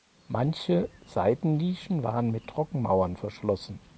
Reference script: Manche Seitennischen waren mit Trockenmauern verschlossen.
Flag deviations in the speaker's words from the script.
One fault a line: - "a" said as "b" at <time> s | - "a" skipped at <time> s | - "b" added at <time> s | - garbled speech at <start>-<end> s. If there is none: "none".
none